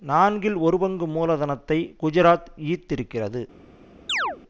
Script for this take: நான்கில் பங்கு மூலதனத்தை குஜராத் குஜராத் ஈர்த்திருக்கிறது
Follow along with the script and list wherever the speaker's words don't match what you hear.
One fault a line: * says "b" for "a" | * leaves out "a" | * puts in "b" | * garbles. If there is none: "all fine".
* puts in "ஒரு"
* leaves out "குஜராத்"